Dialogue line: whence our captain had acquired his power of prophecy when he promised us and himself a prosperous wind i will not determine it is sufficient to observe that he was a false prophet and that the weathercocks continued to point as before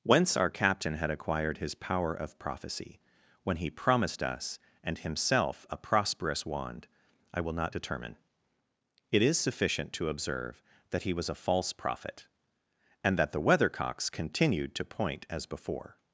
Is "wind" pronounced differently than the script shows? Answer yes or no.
yes